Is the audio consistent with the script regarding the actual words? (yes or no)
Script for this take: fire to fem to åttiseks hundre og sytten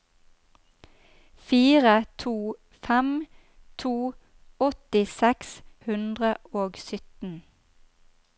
yes